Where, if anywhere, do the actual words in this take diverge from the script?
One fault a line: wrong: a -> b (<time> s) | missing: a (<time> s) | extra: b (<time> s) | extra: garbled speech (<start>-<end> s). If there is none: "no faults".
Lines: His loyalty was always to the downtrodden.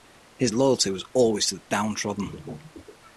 no faults